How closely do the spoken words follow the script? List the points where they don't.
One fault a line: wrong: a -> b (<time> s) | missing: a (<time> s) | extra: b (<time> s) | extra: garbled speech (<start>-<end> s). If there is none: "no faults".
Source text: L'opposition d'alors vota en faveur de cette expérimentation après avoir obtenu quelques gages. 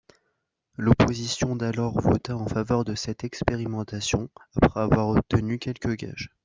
no faults